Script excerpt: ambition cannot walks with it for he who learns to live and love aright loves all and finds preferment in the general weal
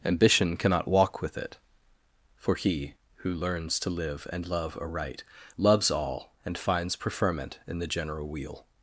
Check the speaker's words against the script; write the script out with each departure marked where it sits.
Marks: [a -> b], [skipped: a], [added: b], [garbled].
ambition cannot [walks -> walk] with it for he who learns to live and love aright loves all and finds preferment in the general weal